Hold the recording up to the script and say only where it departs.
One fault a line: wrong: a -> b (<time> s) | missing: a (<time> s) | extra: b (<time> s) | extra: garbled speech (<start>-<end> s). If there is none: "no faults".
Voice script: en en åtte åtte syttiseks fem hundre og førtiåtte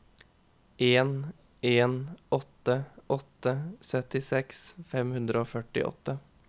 no faults